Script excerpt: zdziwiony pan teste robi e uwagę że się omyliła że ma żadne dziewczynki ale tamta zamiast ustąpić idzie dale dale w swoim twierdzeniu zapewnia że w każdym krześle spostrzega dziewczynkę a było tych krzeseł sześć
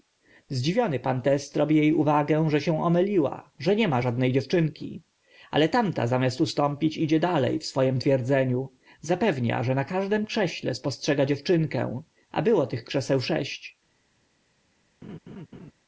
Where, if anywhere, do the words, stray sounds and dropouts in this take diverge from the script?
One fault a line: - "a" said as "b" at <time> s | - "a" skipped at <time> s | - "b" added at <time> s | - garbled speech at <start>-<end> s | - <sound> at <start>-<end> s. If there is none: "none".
- "nie" added at 3.8 s
- "dale" skipped at 7.6 s
- "w" said as "na" at 9.7 s
- laugh at 15.0-15.7 s